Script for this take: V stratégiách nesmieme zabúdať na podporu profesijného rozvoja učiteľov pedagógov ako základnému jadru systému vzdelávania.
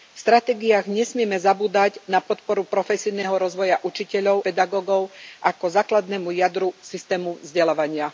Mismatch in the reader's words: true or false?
false